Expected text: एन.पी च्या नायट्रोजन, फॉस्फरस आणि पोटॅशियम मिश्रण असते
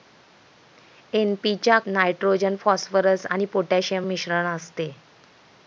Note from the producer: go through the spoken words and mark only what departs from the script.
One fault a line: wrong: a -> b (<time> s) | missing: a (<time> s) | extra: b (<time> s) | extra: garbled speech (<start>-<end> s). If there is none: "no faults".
no faults